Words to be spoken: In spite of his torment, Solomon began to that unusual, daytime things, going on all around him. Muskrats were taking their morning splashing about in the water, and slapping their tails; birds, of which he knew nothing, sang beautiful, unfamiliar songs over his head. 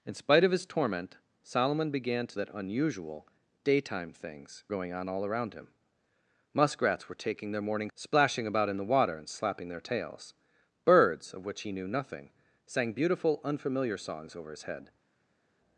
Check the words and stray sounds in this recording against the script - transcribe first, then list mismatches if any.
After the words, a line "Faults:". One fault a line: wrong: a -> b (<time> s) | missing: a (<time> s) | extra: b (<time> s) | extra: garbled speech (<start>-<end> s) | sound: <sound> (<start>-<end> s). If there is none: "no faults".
In spite of his torment, Solomon began to that unusual, daytime things, going on all around him. Muskrats were taking their morning splashing about in the water, and slapping their tails; birds, of which he knew nothing, sang beautiful, unfamiliar songs over his head.
Faults:
no faults